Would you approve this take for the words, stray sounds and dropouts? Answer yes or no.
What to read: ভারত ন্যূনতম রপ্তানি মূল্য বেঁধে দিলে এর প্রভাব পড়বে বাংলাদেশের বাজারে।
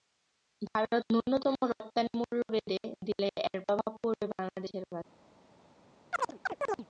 no